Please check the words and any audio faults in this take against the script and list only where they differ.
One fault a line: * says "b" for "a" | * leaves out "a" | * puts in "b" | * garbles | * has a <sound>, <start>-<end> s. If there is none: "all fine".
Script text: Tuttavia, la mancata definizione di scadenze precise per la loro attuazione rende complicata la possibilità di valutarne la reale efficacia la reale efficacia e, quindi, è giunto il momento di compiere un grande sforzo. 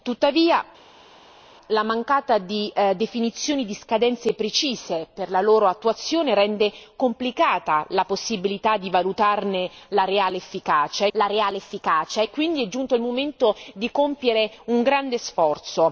all fine